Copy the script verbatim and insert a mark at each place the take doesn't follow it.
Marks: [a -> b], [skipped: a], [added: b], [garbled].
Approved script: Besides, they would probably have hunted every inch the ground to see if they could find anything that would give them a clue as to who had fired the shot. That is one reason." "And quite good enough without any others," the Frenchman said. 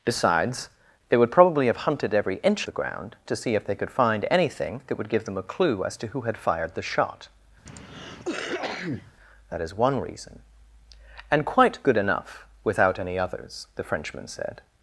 Besides, they would probably have hunted every inch the ground to see if they could find anything that would give them a clue as to who had fired the shot. That is one reason." "And quite good enough without any others," the Frenchman said.